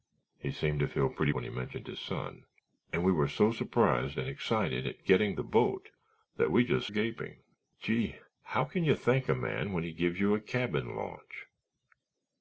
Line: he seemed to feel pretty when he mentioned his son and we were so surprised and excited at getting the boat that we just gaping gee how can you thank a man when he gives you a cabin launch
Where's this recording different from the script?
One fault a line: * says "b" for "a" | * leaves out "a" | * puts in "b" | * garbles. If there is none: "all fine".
all fine